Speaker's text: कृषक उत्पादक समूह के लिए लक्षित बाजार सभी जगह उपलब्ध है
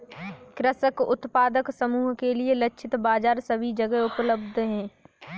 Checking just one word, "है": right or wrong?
right